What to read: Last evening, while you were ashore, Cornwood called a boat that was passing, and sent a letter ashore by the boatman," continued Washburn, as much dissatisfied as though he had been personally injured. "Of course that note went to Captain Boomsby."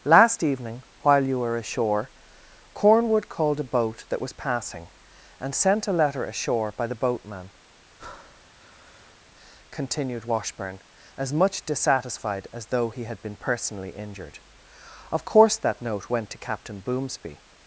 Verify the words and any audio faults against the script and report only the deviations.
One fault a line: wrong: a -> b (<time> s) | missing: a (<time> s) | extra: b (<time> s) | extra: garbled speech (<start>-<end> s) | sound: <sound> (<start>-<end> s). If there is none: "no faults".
sound: breath (8.0-9.2 s)